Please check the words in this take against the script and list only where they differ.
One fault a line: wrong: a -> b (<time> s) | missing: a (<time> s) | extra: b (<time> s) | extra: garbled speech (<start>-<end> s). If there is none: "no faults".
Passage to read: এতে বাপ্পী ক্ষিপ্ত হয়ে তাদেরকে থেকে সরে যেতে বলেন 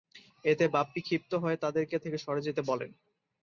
no faults